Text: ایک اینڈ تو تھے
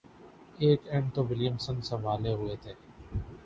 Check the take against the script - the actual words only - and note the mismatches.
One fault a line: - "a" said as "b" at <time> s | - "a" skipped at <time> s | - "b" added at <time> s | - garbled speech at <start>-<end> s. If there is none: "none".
- "ولیمسن سنبھالے ہوئے" added at 1.2 s